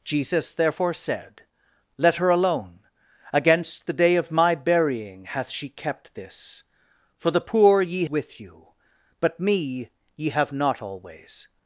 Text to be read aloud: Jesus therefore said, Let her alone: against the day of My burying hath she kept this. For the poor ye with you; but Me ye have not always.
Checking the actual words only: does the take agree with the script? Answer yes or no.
yes